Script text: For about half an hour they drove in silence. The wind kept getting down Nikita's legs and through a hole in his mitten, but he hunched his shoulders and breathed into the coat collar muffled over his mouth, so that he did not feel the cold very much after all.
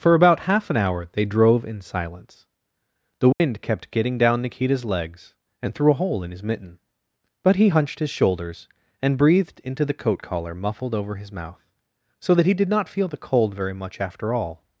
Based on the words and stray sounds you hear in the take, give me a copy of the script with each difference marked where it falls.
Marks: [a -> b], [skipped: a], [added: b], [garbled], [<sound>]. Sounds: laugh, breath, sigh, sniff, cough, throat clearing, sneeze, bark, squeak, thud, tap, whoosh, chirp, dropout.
For about half an hour they drove in silence. The wind [dropout] kept getting down Nikita's legs and through a hole in his mitten, but he hunched his shoulders and breathed into the coat collar muffled over his mouth, so that he did not feel the cold very much after all.